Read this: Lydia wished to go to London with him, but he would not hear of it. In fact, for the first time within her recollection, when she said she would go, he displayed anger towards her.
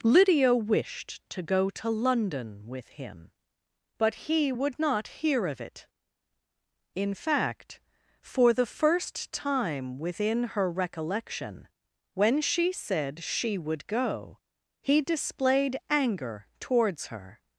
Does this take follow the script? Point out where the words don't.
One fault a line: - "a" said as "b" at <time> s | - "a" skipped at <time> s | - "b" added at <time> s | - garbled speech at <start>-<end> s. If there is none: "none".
none